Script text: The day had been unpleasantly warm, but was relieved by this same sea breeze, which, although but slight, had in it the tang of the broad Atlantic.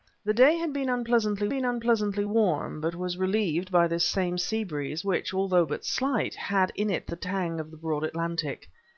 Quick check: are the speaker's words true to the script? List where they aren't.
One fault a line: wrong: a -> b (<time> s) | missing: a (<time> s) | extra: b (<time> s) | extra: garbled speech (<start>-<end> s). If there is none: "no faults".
extra: been unpleasantly (1.5 s)